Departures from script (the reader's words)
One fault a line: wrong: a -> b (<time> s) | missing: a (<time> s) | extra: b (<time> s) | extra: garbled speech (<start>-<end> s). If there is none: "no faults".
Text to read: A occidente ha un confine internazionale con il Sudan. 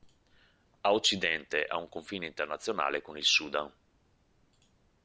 no faults